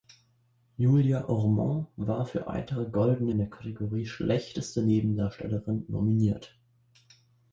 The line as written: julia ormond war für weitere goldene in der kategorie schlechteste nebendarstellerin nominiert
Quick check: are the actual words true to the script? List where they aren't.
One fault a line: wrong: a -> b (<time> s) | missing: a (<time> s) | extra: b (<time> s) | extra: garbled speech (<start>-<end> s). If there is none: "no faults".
no faults